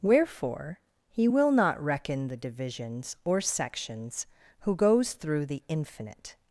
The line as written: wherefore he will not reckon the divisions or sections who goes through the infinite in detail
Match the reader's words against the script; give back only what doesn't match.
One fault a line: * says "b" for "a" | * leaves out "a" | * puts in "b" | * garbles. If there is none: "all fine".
* leaves out "in detail"